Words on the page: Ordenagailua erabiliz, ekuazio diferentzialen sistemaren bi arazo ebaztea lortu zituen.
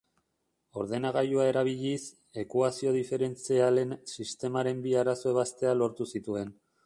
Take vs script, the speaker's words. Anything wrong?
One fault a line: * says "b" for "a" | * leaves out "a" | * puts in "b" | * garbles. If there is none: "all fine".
all fine